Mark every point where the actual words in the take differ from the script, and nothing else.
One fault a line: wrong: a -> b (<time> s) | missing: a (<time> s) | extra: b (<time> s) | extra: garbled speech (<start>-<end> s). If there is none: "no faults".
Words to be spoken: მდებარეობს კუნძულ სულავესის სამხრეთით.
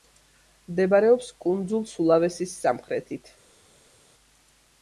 no faults